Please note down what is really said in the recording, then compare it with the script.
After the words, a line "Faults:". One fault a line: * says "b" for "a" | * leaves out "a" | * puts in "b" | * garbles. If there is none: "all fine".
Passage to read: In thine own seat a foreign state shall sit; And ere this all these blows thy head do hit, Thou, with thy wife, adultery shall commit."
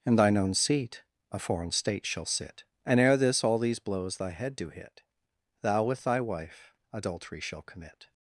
In thine own seat a foreign state shall sit; And ere this all these blows thy head do hit, Thou, with thy wife, adultery shall commit."
Faults:
all fine